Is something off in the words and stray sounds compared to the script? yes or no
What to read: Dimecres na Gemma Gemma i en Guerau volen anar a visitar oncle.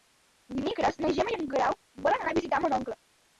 yes